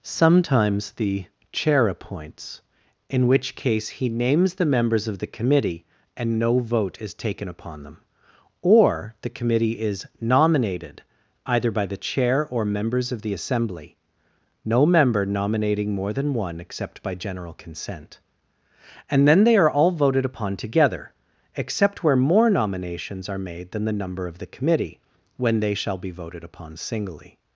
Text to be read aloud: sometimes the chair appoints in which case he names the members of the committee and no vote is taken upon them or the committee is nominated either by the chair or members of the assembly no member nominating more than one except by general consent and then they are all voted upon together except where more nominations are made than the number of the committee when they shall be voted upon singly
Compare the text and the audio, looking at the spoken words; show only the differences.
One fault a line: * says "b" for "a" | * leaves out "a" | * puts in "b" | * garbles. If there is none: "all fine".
all fine